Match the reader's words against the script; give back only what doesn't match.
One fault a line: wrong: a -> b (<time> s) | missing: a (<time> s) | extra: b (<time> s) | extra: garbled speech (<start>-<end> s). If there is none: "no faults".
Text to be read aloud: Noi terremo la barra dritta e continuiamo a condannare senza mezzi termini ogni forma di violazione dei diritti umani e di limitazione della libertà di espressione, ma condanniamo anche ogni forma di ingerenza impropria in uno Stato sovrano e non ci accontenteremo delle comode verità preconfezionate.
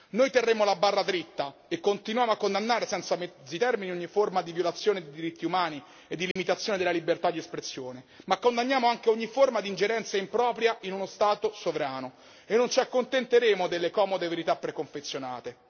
no faults